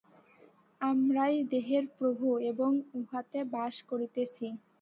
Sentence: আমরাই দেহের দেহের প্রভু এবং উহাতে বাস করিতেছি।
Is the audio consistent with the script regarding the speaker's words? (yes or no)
no